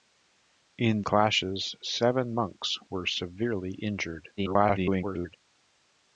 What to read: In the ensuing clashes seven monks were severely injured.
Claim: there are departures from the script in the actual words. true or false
true